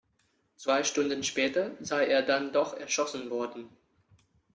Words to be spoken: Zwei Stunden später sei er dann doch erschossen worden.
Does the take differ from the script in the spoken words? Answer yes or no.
no